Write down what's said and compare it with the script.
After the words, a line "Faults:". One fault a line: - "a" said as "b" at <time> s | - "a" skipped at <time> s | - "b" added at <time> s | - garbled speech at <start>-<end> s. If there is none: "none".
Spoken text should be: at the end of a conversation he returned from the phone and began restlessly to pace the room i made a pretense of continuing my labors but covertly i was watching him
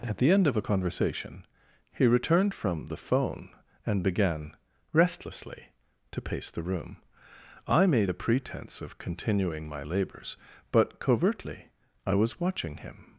at the end of a conversation he returned from the phone and began restlessly to pace the room i made a pretense of continuing my labors but covertly i was watching him
Faults:
none